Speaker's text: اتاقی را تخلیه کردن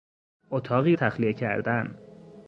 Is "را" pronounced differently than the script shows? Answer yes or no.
yes